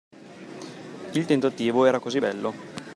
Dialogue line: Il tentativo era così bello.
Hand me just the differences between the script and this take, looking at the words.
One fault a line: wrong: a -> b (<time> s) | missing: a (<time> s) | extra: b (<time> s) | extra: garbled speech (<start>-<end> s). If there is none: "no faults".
no faults